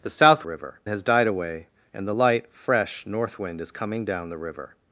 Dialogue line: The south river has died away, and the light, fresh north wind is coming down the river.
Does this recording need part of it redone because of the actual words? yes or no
no